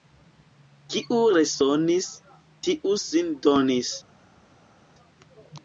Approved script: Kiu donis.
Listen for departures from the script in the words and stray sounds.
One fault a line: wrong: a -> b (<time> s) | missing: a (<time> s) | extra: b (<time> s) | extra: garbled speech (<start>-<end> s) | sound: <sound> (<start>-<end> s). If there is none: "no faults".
extra: resonis tiu sin (1.3 s)